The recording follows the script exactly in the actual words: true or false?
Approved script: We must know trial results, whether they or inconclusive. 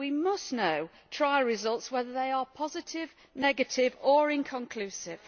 false